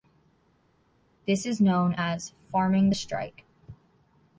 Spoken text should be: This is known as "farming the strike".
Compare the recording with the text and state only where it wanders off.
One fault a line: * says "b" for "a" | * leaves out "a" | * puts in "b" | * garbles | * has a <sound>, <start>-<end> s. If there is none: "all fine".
all fine